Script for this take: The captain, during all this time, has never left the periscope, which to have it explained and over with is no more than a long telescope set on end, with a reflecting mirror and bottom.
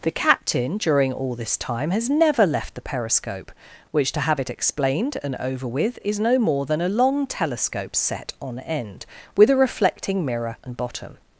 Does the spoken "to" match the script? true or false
true